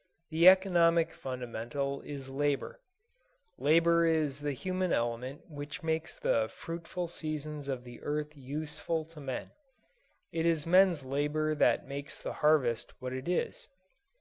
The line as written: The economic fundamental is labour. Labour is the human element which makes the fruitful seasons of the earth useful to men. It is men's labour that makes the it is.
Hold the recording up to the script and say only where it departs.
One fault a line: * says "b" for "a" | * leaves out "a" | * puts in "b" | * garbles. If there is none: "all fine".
* puts in "harvest what"